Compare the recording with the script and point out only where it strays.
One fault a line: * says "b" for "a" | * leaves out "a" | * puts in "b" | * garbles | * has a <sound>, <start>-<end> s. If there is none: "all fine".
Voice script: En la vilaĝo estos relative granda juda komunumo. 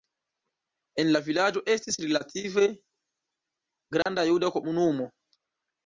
* says "estis" for "estos"
* has a dropout, 4.0-4.1 s